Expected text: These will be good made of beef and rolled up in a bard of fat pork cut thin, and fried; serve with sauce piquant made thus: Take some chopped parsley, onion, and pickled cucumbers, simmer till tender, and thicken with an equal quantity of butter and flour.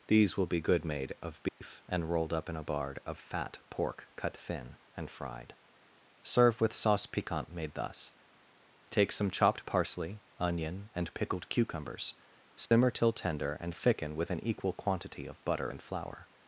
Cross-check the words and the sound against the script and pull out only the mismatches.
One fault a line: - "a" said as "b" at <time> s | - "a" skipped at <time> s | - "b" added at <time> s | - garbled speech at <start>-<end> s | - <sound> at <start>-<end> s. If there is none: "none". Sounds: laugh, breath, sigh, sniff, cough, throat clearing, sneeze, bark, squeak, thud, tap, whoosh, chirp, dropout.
- dropout at 1.5-1.6 s
- dropout at 12.7-12.7 s